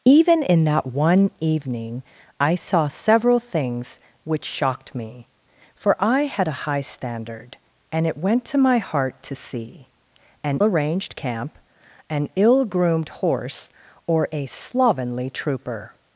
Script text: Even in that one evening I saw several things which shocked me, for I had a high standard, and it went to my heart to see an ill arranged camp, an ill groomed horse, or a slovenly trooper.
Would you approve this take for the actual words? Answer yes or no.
no